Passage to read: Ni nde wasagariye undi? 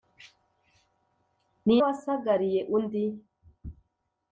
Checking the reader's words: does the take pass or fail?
fail